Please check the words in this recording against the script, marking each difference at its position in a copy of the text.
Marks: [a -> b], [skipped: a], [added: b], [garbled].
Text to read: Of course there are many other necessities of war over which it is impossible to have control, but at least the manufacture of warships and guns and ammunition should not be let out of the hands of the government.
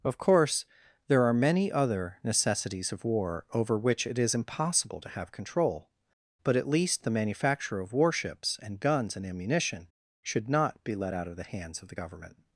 Of course there are many other necessities of war over which it is impossible to have control, but at least the manufacture of warships and guns and ammunition should not be let out of the hands of the government.